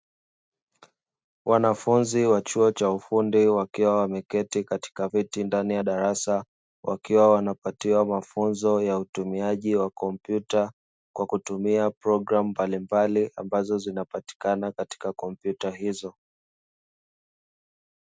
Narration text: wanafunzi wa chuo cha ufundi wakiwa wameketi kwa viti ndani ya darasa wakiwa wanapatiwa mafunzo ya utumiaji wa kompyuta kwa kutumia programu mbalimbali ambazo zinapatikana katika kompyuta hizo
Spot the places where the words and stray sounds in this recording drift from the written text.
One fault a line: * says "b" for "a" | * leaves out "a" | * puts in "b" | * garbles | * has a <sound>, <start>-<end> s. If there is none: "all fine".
* says "katika" for "kwa"